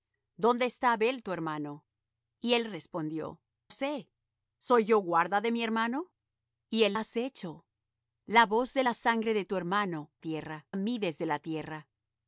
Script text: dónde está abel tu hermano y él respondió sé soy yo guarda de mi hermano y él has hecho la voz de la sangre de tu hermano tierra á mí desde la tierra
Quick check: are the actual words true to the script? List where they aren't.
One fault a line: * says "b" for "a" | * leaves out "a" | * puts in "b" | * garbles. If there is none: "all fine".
all fine